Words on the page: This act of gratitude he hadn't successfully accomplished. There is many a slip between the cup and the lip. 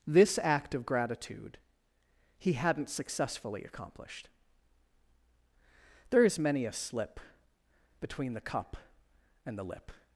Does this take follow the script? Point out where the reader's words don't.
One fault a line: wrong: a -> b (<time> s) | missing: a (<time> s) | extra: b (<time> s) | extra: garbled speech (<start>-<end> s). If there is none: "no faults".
no faults